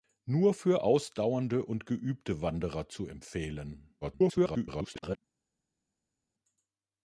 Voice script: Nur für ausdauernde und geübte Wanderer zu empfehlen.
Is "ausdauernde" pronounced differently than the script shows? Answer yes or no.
no